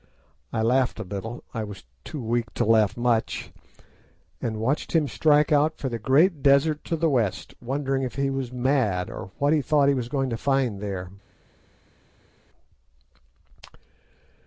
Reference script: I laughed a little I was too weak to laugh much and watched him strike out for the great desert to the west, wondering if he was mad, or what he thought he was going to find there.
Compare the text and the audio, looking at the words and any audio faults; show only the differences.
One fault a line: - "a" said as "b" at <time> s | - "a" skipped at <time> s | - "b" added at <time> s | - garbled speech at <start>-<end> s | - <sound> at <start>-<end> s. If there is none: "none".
none